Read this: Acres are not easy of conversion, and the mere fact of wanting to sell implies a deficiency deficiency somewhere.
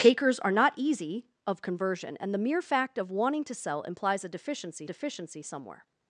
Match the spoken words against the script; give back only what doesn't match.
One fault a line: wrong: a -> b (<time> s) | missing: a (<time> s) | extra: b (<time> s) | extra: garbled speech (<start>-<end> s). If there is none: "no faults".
no faults